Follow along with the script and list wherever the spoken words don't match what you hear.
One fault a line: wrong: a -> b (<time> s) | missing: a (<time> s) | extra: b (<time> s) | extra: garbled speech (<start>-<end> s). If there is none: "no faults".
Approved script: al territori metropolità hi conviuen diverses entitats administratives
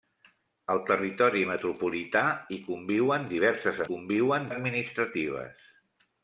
wrong: entitats -> conviuen (3.9 s)